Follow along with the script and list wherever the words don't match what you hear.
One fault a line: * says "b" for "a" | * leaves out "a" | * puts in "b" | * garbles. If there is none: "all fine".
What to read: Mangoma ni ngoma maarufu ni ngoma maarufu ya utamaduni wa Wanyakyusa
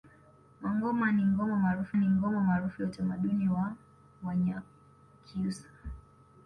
all fine